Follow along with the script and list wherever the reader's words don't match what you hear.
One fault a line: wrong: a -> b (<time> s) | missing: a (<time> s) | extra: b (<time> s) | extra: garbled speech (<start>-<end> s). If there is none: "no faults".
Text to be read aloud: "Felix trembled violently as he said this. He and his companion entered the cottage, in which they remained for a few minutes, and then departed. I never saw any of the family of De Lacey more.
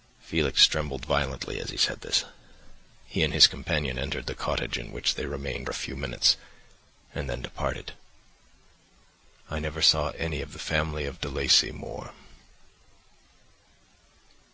missing: for (5.7 s)